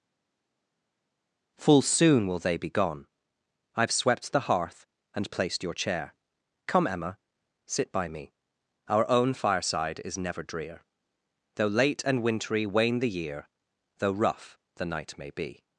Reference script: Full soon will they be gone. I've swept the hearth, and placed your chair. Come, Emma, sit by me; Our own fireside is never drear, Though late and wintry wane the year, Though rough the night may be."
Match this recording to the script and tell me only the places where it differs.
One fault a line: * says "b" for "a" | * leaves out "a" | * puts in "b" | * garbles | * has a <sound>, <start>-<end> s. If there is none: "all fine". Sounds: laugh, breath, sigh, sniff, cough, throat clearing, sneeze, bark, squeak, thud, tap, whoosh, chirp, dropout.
all fine